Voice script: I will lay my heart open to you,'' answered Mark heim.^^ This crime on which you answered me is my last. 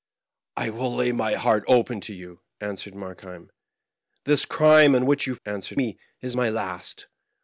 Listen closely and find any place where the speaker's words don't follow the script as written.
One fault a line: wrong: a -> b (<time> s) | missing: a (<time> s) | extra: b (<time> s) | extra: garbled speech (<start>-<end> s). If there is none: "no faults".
no faults